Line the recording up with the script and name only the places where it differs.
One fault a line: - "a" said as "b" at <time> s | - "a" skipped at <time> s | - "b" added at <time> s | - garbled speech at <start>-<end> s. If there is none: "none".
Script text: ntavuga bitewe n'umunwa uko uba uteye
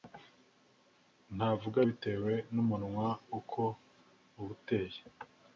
none